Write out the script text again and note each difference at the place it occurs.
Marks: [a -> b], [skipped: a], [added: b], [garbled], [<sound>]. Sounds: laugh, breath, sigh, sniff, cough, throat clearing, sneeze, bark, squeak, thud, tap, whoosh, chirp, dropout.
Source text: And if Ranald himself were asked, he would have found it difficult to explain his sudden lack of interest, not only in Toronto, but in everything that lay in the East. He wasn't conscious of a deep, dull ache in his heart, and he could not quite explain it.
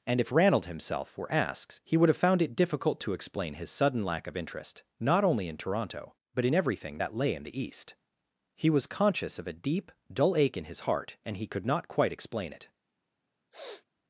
And if Ranald himself were asked, he would have found it difficult to explain his sudden lack of interest, not only in Toronto, but in everything that lay in the East. He [wasn't -> was] conscious of a deep, dull ache in his heart, and he could not quite explain it. [sniff]